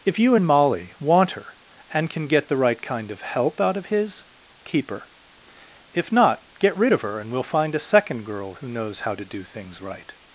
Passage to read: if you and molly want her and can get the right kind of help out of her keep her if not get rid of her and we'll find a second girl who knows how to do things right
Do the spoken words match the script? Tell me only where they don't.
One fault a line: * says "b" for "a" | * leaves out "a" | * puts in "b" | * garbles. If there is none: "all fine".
* says "his" for "her"